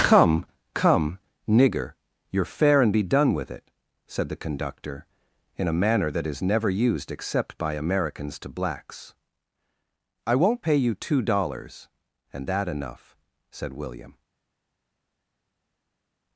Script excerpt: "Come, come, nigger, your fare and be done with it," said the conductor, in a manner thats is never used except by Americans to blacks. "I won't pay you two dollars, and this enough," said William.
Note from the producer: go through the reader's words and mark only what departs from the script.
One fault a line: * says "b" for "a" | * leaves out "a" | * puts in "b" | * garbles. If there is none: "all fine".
* says "that" for "thats"
* says "that" for "this"